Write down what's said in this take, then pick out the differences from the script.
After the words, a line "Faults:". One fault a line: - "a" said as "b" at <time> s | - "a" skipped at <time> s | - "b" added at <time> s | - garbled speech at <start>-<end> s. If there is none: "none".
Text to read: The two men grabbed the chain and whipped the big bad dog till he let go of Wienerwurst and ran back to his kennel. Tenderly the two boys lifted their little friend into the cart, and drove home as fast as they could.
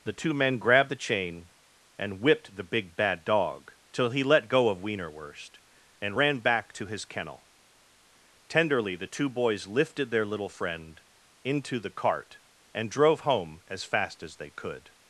The two men grabbed the chain and whipped the big bad dog till he let go of Wienerwurst and ran back to his kennel. Tenderly the two boys lifted their little friend into the cart, and drove home as fast as they could.
Faults:
none